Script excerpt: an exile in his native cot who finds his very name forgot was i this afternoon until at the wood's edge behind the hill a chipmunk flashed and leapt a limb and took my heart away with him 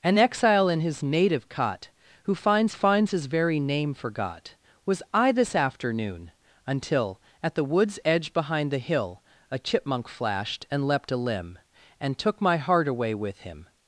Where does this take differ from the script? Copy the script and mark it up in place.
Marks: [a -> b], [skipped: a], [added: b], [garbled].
an exile in his native cot who finds [added: finds] his very name forgot was i this afternoon until at the wood's edge behind the hill a chipmunk flashed and leapt a limb and took my heart away with him